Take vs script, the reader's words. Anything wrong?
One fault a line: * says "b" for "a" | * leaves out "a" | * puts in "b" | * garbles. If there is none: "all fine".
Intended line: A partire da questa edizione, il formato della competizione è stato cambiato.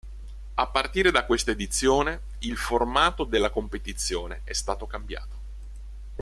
all fine